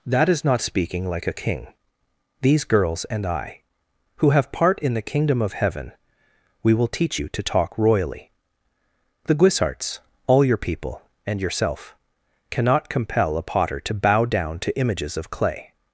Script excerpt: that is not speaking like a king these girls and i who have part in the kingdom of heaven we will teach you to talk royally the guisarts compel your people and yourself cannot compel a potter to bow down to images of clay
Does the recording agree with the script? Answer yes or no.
no